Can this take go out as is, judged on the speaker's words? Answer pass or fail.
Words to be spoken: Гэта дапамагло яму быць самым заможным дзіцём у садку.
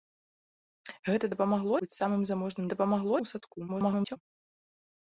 fail